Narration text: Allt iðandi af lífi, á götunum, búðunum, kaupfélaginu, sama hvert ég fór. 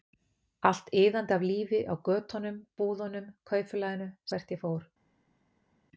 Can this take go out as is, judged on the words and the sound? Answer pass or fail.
fail